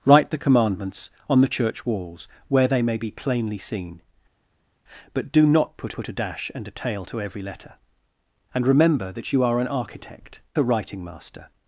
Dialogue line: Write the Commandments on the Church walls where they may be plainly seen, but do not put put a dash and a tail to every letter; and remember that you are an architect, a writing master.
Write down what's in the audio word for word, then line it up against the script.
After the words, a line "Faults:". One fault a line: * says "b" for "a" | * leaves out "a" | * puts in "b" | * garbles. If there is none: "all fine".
Write the Commandments on the Church walls where they may be plainly seen, but do not put put a dash and a tail to every letter; and remember that you are an architect, a writing master.
Faults:
all fine